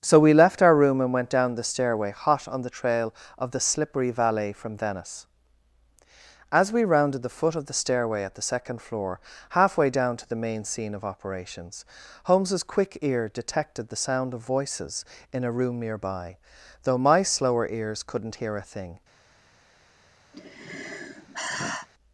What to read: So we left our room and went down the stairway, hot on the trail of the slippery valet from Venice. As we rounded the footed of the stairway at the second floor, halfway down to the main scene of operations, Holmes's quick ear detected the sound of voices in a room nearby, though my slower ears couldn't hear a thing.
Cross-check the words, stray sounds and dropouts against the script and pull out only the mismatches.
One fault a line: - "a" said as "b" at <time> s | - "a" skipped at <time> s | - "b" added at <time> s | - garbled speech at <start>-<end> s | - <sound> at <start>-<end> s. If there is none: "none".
- "footed" said as "foot" at 7.3 s
- sigh at 20.3-21.9 s